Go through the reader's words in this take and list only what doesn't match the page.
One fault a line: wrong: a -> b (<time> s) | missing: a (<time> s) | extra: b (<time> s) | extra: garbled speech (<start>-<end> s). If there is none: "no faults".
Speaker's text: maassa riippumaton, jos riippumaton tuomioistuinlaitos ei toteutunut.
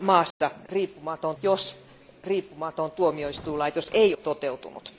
no faults